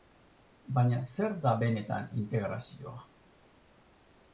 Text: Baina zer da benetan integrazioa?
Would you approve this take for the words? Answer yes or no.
yes